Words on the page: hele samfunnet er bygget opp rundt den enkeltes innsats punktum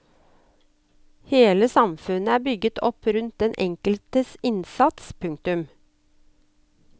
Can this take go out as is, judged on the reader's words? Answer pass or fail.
pass